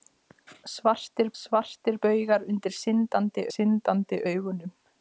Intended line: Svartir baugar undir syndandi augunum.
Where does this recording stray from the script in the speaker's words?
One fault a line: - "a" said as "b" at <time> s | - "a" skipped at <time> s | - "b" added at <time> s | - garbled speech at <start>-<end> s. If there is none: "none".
- "svartir" added at 1.4 s
- "syndandi" added at 3.5 s